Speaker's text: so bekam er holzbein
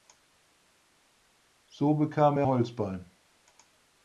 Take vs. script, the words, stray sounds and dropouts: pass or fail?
pass